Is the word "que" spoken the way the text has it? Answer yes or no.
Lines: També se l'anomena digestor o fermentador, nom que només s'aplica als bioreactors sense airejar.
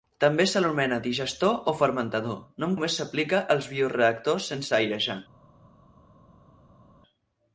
no